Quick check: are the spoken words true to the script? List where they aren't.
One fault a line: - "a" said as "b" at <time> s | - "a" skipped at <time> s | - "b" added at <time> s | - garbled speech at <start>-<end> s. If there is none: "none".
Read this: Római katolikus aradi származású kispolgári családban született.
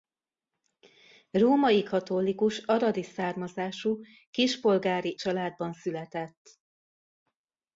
none